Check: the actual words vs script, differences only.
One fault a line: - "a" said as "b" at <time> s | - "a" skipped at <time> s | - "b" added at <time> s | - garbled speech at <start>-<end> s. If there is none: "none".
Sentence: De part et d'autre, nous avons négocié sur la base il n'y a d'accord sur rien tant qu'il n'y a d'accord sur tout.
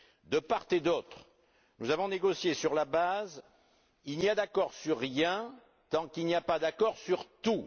- "pas" added at 6.4 s